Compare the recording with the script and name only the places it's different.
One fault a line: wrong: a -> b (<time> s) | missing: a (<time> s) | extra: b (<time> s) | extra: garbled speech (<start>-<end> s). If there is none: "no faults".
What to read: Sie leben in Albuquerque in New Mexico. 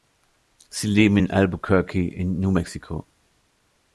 no faults